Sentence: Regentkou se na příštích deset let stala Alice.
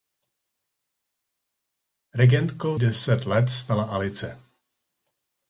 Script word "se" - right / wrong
wrong